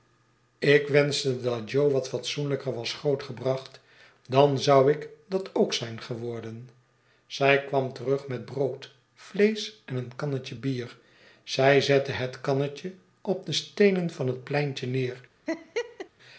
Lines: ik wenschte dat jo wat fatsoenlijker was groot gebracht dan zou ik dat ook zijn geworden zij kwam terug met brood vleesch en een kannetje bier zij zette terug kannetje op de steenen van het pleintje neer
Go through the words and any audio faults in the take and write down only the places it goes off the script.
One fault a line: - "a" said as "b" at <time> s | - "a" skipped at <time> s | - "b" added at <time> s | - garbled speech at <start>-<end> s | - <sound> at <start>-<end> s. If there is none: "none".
- "terug" said as "het" at 12.1 s
- laugh at 15.5-16.1 s